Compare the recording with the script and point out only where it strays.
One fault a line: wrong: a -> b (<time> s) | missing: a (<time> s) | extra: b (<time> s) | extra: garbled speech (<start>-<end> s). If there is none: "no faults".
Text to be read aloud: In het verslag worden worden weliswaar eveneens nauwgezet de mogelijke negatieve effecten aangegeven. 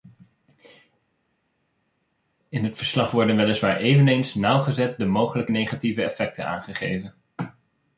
missing: worden (3.4 s)